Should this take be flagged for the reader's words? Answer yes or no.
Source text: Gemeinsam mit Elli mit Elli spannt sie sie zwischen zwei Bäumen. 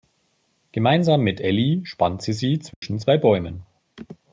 yes